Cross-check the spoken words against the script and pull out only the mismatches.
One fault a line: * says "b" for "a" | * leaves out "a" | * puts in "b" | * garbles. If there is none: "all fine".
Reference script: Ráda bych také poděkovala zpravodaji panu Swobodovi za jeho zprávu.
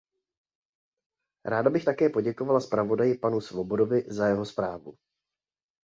all fine